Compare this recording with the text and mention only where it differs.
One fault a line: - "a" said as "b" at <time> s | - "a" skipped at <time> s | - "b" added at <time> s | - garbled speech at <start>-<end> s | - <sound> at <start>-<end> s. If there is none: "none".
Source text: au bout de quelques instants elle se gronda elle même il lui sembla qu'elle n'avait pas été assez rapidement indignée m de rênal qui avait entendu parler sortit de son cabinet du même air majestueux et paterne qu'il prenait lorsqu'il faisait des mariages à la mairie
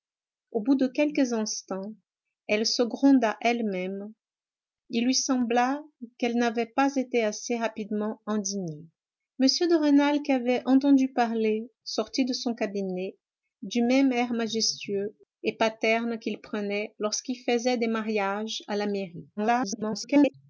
- garbled speech at 19.4-20.3 s